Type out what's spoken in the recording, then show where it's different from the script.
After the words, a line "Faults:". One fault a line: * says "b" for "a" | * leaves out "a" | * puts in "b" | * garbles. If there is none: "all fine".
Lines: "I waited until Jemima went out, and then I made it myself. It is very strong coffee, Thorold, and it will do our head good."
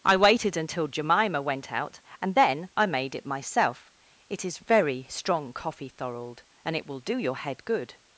"I waited until Jemima went out, and then I made it myself. It is very strong coffee, Thorold, and it will do your head good."
Faults:
* says "your" for "our"